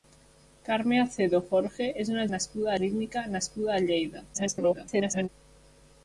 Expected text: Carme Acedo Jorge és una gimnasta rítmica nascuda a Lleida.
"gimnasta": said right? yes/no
no